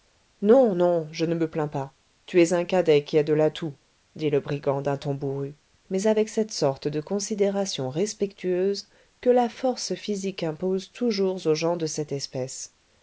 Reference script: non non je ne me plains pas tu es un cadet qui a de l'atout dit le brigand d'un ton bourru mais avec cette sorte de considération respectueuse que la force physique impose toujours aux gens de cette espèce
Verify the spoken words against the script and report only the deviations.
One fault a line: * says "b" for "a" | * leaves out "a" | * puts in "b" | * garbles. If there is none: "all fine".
all fine